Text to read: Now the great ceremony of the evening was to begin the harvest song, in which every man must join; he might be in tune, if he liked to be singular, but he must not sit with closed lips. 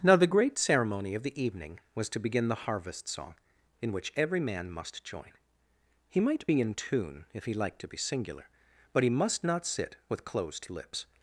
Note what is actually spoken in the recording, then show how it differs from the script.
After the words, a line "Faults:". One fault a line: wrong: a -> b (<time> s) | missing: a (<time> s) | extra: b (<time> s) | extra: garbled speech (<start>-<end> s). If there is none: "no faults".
Now the great ceremony of the evening was to begin the harvest song, in which every man must join; he might be in tune, if he liked to be singular, but he must not sit with closed lips.
Faults:
no faults